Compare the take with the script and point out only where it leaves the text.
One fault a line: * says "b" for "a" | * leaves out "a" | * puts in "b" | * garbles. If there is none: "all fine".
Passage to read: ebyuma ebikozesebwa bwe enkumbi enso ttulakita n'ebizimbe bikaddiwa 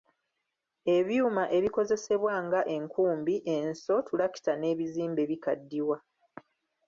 * says "nga" for "bwe"